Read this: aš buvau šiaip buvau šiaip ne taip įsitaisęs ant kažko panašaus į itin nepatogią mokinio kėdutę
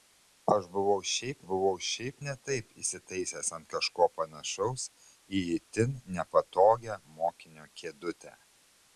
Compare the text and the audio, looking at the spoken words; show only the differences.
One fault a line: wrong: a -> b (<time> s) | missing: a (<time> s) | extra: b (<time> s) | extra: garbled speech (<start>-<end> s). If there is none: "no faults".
no faults